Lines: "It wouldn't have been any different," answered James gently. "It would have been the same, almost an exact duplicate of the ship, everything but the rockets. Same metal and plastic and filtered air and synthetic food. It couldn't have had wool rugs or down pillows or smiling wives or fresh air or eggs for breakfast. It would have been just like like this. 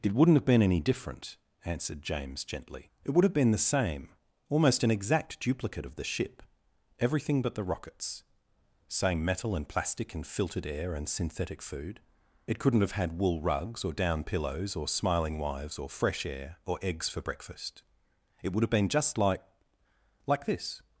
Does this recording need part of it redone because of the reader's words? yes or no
no